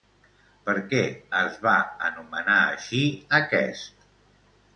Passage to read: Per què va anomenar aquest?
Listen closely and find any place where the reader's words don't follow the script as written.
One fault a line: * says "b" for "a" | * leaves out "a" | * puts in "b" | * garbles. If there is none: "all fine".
* puts in "es"
* puts in "així"